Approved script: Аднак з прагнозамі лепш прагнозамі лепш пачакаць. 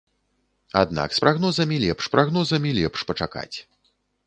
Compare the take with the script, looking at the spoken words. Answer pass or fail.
pass